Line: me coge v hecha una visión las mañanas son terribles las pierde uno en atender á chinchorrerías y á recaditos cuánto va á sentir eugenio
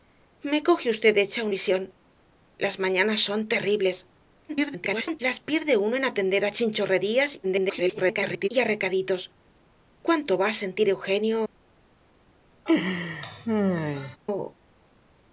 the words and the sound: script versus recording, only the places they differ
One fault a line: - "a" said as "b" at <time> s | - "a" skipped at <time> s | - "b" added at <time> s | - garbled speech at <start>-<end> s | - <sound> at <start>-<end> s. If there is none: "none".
- "una" skipped at 1.5 s
- garbled speech at 4.5-5.2 s
- garbled speech at 7.4-8.5 s
- laugh at 12.7-14.2 s